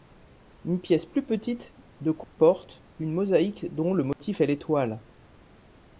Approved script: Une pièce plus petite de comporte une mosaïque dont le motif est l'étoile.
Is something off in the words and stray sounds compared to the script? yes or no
yes